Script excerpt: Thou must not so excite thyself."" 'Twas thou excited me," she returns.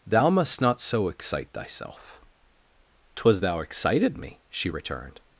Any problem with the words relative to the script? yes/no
yes